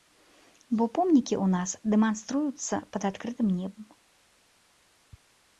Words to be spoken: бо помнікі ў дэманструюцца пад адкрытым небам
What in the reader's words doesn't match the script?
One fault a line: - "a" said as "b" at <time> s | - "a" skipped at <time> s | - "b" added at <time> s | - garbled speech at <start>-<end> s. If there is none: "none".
- "нас" added at 1.6 s